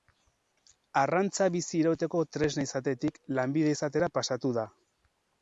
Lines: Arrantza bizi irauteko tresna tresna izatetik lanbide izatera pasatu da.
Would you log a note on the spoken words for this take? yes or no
yes